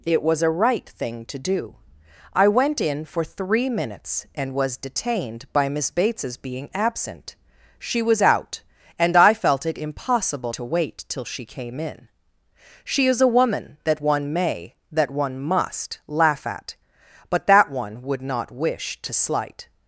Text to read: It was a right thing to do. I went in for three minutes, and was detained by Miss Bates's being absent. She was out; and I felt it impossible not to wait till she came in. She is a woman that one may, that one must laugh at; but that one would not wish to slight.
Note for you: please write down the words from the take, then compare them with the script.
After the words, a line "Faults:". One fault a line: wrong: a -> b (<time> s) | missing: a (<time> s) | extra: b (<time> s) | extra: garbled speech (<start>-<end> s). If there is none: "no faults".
It was a right thing to do. I went in for three minutes, and was detained by Miss Bates's being absent. She was out; and I felt it impossible to wait till she came in. She is a woman that one may, that one must laugh at; but that one would not wish to slight.
Faults:
missing: not (10.5 s)